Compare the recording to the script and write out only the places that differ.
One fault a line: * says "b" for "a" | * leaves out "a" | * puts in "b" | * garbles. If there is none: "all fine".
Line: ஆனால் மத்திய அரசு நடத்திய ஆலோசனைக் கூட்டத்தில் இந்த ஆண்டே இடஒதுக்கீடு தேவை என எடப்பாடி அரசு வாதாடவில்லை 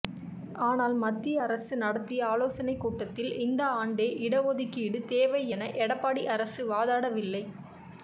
all fine